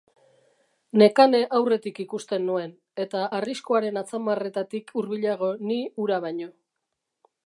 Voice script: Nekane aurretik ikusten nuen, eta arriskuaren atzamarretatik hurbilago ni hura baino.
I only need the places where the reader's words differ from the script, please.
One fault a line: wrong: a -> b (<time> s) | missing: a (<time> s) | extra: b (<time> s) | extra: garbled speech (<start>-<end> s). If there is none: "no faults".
no faults